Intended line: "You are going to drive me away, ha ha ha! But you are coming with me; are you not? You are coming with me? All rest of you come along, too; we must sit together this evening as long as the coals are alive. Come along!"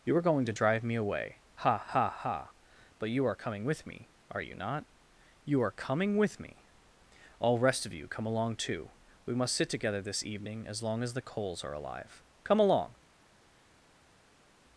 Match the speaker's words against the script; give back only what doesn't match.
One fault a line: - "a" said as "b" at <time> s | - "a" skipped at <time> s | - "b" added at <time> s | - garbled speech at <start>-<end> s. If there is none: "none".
none